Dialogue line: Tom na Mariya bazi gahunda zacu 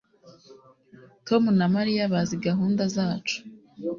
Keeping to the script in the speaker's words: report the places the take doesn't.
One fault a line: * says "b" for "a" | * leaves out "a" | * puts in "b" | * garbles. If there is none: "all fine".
all fine